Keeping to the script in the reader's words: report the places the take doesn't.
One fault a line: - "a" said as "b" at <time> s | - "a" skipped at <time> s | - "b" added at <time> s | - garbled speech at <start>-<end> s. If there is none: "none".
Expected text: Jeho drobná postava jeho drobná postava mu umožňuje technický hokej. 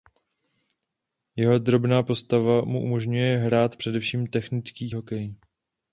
- "jeho drobná postava mu umožňuje" said as "mu umožňuje hrát především" at 2.6 s